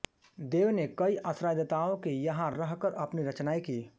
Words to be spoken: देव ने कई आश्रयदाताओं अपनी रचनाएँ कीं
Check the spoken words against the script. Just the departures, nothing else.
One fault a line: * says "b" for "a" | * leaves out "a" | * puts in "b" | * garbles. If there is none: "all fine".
* puts in "के यहाँ रहकर"